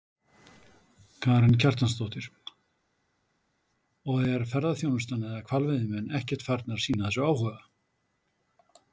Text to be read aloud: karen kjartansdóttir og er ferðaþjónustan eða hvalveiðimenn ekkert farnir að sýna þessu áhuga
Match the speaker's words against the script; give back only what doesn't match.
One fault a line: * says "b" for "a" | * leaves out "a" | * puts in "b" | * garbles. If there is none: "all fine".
all fine